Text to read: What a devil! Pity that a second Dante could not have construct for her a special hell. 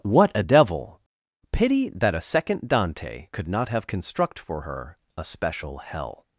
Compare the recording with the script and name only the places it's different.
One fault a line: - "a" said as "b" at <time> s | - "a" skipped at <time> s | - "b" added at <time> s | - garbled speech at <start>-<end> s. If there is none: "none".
none